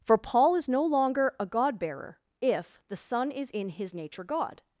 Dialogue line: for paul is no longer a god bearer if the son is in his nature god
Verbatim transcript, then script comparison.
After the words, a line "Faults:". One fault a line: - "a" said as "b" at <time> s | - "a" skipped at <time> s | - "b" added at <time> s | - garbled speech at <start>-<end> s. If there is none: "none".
for paul is no longer a god bearer if the son is in his nature god
Faults:
none